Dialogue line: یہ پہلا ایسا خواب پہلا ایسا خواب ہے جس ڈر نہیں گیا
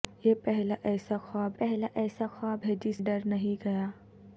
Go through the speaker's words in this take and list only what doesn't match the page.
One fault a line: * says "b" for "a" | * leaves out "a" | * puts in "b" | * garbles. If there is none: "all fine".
all fine